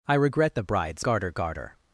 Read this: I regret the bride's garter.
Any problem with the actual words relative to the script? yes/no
yes